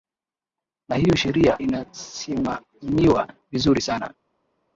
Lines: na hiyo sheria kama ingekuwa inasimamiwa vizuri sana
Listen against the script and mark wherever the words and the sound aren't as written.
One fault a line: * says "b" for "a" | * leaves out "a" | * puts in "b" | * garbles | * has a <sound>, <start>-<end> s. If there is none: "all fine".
* leaves out "kama ingekuwa"